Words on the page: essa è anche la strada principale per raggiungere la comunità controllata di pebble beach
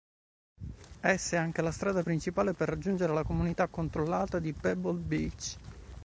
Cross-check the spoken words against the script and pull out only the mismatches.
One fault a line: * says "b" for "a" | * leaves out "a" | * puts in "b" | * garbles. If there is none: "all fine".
all fine